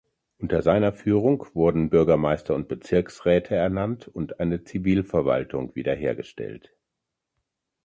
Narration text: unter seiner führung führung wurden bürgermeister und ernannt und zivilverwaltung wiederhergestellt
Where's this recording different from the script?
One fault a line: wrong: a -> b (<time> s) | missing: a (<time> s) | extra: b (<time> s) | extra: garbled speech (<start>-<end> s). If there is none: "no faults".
missing: führung (1.5 s)
extra: bezirksräte (2.7 s)
extra: eine (4.4 s)